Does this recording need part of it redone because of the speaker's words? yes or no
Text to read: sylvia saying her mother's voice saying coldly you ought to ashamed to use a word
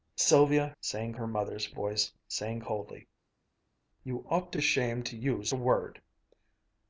no